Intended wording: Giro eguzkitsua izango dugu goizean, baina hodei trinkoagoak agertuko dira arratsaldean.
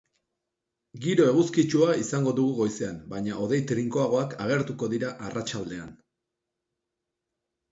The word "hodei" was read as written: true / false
true